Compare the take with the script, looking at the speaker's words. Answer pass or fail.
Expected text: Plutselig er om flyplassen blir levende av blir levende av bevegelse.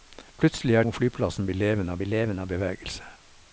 pass